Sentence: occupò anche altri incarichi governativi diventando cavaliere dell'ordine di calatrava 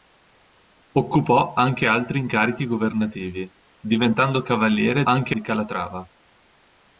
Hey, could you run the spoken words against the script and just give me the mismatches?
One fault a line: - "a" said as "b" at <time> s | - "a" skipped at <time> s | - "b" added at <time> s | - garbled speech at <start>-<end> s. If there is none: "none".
- "dell'ordine" said as "anche" at 5.0 s